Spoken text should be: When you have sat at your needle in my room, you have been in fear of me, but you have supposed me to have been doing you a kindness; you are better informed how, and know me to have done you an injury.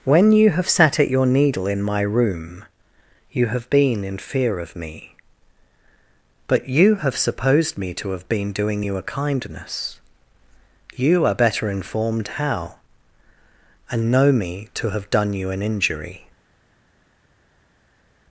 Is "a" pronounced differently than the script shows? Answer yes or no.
no